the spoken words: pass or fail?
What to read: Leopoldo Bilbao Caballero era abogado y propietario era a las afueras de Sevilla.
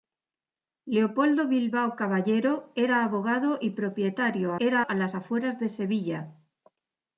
pass